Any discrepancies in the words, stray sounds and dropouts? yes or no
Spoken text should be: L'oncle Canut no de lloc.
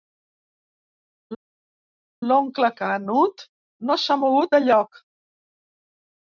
yes